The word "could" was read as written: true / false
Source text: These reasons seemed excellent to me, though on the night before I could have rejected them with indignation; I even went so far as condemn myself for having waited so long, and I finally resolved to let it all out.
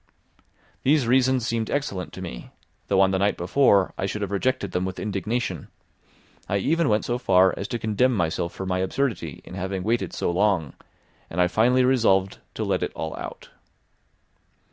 false